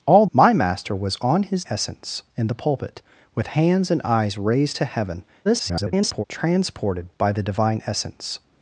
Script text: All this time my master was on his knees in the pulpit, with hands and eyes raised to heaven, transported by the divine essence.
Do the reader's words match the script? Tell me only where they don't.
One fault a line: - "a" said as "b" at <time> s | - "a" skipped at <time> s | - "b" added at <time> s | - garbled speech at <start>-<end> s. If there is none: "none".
- "this time" skipped at 0.2 s
- "knees" said as "essence" at 1.7 s
- garbled speech at 5.4-6.2 s